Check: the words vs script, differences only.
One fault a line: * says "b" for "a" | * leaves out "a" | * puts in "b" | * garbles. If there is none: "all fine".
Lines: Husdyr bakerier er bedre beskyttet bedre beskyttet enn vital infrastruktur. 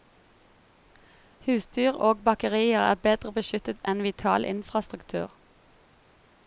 * puts in "og"
* leaves out "bedre beskyttet"